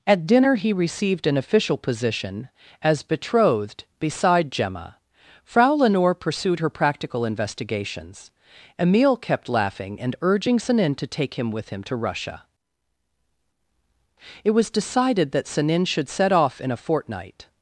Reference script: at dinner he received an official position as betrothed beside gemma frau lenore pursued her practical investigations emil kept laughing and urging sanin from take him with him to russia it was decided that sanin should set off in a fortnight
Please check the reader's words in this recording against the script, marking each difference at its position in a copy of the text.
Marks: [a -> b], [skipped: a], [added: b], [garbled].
at dinner he received an official position as betrothed beside gemma frau lenore pursued her practical investigations emil kept laughing and urging sanin [from -> to] take him with him to russia it was decided that sanin should set off in a fortnight